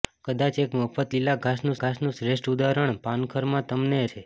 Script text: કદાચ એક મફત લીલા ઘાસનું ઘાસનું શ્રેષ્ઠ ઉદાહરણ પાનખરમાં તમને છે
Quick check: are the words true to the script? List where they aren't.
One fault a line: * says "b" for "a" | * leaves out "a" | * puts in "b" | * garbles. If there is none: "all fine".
all fine